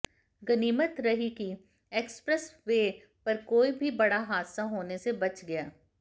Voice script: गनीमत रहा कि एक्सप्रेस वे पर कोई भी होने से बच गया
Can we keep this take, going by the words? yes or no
no